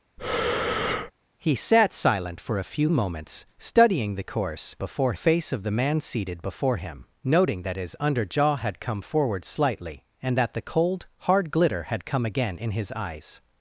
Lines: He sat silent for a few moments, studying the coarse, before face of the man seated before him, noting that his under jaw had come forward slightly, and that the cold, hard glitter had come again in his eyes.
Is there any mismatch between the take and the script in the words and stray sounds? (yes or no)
yes